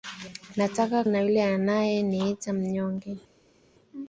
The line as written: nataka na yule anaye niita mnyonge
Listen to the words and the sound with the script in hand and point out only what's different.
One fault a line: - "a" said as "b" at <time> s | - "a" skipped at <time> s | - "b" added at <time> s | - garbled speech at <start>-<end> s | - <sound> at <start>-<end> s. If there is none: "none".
none